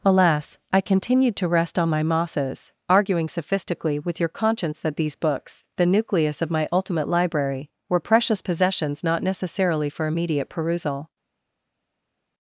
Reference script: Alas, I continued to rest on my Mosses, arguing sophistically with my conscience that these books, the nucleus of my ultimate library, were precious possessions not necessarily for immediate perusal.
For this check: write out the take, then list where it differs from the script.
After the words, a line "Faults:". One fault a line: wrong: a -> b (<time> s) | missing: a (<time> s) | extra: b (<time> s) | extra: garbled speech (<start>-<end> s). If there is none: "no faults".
Alas, I continued to rest on my Mosses, arguing sophistically with your conscience that these books, the nucleus of my ultimate library, were precious possessions not necessarily for immediate perusal.
Faults:
wrong: my -> your (4.2 s)